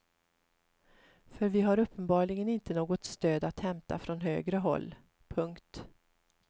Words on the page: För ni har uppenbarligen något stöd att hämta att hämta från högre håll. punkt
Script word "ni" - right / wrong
wrong